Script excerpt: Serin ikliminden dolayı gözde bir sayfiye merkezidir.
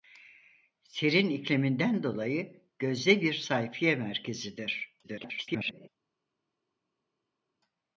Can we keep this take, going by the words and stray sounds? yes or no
no